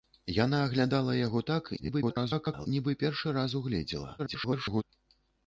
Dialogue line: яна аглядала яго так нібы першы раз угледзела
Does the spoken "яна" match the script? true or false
true